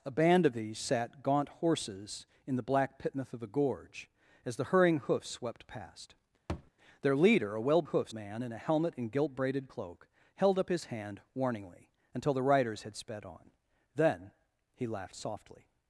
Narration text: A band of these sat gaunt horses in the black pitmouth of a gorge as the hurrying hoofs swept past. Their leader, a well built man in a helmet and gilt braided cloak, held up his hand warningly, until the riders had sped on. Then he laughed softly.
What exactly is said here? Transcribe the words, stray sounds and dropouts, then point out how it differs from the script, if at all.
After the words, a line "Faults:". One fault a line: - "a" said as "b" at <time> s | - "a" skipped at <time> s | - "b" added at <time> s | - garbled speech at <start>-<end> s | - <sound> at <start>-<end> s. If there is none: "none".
A band of these sat gaunt horses in the black pitmouth of a gorge as the hurrying hoofs swept past. Their leader, a well hoofs man in a helmet and gilt braided cloak, held up his hand warningly, until the riders had sped on. Then he laughed softly.
Faults:
- thud at 6.5-6.7 s
- "built" said as "hoofs" at 7.8 s